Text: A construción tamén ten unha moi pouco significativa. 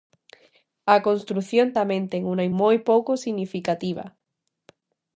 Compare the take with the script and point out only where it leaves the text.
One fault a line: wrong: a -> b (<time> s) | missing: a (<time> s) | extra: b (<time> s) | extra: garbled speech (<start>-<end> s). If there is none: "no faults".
no faults